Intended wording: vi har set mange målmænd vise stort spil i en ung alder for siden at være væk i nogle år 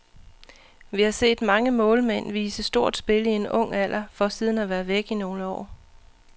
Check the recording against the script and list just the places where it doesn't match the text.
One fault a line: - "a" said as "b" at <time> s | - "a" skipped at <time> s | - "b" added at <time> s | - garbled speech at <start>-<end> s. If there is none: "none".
none